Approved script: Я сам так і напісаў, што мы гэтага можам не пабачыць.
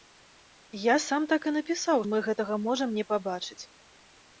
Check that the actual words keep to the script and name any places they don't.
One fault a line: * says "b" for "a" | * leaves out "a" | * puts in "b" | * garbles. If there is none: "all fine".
* leaves out "што"